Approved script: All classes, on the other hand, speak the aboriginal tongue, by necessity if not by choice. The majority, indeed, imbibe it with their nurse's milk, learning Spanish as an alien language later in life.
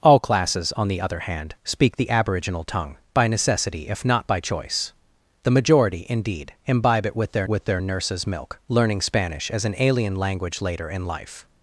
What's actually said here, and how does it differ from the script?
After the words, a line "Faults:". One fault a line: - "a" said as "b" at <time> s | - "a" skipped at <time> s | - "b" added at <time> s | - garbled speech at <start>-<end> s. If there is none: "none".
All classes, on the other hand, speak the aboriginal tongue, by necessity if not by choice. The majority, indeed, imbibe it with their with their nurse's milk, learning Spanish as an alien language later in life.
Faults:
- "with their" added at 7.5 s